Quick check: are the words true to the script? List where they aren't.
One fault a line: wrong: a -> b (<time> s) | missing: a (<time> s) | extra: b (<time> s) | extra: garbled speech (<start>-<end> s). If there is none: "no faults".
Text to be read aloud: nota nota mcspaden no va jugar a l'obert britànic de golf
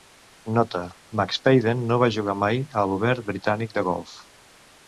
missing: nota (0.8 s)
extra: mai (2.5 s)